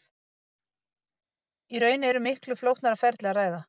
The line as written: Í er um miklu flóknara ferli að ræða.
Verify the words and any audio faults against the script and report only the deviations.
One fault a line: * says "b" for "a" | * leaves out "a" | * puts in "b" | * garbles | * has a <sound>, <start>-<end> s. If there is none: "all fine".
* puts in "raun"